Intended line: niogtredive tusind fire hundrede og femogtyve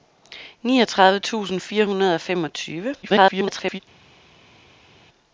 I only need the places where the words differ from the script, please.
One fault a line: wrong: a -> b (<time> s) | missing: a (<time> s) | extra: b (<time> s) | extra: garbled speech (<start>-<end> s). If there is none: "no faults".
extra: garbled speech (3.0-3.8 s)